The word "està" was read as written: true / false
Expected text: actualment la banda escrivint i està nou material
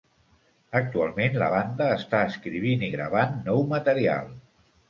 false